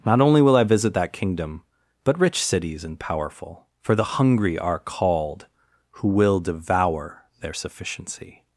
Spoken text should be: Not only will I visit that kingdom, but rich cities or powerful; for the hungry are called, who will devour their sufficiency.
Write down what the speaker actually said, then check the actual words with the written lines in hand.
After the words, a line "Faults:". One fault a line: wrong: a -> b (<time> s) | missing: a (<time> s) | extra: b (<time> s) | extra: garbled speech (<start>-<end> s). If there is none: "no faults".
Not only will I visit that kingdom, but rich cities and powerful; for the hungry are called, who will devour their sufficiency.
Faults:
wrong: or -> and (2.8 s)